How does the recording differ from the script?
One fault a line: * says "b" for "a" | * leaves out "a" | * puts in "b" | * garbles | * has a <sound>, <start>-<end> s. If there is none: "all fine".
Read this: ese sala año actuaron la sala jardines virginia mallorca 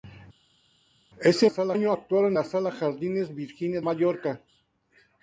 all fine